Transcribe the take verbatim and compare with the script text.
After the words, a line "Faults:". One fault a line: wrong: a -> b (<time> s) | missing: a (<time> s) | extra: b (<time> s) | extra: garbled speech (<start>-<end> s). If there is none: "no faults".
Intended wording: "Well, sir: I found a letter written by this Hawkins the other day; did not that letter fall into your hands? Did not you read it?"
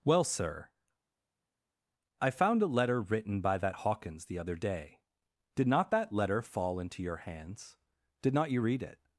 "Well, sir: I found a letter written by that Hawkins the other day; did not that letter fall into your hands? Did not you read it?"
Faults:
wrong: this -> that (3.6 s)